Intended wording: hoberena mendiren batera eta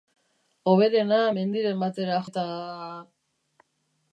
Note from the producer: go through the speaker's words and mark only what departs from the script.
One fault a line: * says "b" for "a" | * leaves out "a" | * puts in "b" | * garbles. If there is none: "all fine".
all fine